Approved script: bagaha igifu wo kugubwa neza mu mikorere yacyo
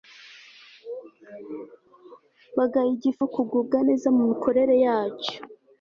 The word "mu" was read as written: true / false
true